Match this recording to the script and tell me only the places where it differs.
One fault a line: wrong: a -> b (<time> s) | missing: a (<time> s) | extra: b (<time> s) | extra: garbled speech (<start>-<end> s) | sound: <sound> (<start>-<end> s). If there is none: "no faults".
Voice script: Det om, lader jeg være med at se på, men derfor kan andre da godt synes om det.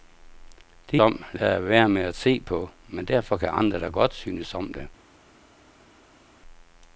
no faults